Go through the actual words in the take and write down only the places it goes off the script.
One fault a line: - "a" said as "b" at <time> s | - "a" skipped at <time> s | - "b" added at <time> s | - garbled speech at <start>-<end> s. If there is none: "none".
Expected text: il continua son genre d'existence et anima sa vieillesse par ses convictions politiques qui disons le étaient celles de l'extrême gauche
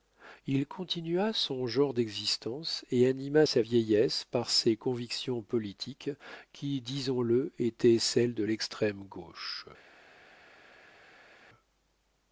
none